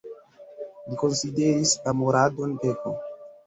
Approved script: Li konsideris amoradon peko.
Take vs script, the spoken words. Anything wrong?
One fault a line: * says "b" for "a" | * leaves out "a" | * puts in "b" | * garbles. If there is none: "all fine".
all fine